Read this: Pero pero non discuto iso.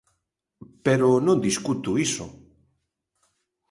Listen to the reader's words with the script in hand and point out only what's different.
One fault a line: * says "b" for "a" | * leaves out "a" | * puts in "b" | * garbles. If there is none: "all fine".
* leaves out "pero"